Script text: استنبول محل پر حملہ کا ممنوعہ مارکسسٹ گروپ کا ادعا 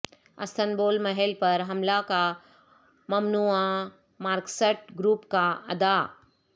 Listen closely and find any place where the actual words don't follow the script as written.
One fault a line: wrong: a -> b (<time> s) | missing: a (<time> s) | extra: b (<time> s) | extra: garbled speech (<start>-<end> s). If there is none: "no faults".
no faults